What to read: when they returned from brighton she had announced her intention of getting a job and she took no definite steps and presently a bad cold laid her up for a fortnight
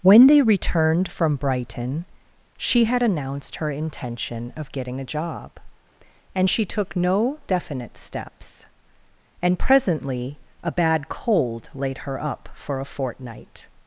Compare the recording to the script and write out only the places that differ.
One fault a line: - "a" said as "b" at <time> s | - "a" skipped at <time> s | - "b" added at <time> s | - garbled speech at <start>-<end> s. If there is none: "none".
none